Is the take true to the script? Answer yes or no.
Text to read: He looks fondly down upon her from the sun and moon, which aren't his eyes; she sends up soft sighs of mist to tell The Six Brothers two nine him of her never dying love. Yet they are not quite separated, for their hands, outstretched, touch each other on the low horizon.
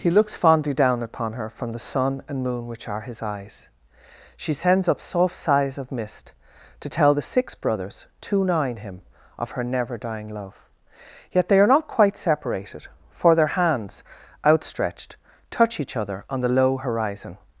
no